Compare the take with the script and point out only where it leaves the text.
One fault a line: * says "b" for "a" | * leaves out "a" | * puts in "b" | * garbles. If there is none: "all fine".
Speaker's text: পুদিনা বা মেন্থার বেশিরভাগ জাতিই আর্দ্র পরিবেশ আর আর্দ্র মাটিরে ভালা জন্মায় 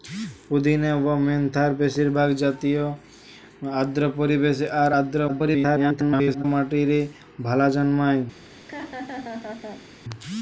* garbles